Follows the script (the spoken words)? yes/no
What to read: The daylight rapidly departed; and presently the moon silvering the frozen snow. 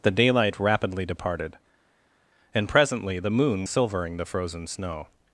yes